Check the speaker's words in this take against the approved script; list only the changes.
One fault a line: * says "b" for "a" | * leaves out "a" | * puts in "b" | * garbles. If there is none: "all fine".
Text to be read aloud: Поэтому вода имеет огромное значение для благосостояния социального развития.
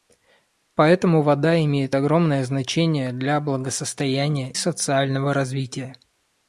all fine